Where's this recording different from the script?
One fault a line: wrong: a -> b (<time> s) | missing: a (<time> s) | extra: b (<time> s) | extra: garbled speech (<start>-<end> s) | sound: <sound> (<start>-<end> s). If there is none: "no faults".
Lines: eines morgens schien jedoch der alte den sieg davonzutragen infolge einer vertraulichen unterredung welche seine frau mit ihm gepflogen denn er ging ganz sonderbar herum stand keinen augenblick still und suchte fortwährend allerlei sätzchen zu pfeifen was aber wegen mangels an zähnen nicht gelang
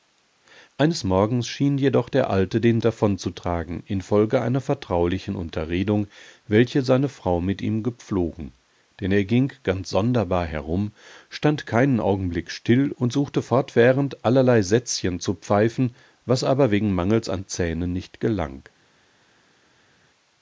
missing: sieg (2.8 s)